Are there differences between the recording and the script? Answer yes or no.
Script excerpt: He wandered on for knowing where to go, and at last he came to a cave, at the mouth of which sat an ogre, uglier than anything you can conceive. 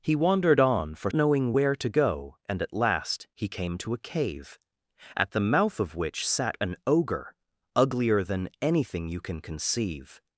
no